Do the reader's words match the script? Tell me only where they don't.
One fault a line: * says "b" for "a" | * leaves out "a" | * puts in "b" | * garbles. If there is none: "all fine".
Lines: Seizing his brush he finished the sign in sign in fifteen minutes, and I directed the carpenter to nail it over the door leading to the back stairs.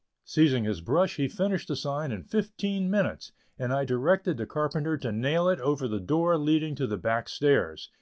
* leaves out "sign in"